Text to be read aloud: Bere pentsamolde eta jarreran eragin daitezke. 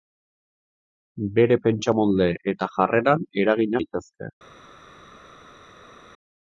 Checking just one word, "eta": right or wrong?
right